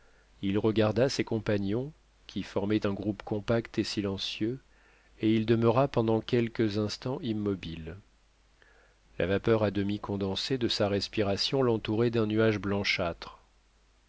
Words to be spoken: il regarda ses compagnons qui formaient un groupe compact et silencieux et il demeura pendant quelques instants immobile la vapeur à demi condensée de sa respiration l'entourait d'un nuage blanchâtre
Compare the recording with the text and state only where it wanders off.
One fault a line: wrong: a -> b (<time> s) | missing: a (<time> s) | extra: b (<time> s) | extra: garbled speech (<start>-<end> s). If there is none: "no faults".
no faults